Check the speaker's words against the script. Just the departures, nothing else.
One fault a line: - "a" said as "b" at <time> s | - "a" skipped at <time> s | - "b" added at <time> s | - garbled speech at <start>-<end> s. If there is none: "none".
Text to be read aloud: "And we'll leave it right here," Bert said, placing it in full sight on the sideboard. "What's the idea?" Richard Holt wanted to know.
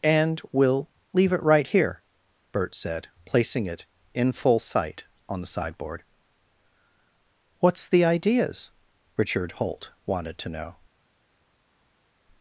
- "idea" said as "ideas" at 8.0 s